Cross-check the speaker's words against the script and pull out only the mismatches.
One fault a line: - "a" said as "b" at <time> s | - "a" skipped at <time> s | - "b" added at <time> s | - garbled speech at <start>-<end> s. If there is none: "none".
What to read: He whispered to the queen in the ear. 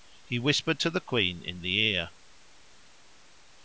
none